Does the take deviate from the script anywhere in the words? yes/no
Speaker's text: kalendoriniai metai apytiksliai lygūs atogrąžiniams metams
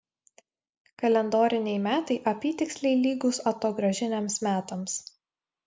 no